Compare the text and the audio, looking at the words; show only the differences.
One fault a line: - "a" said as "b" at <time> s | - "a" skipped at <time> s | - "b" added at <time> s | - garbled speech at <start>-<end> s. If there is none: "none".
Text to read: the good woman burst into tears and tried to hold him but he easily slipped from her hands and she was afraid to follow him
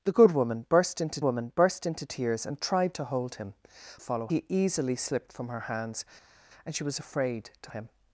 - "woman burst into" added at 1.2 s
- "but" said as "follow" at 4.0 s
- "follow" skipped at 7.7 s